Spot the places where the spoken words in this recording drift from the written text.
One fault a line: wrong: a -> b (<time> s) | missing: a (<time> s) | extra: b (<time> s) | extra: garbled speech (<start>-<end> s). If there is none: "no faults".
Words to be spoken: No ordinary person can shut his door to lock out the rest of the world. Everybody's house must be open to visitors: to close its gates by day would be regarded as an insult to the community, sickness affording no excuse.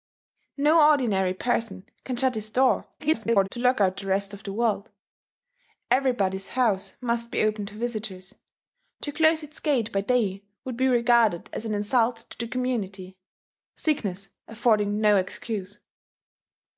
extra: garbled speech (3.0-3.5 s)